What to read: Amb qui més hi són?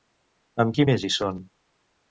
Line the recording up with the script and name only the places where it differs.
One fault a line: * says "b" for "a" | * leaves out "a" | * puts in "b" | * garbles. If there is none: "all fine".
all fine